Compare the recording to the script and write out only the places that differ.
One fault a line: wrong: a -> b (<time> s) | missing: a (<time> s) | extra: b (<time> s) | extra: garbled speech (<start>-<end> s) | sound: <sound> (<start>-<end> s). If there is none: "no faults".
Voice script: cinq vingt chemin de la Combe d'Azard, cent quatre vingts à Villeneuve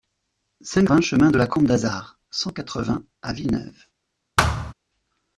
sound: thud (4.4-4.7 s)